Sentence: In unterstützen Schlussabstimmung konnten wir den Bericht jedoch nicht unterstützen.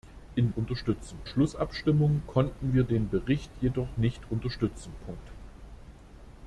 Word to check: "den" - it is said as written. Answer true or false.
true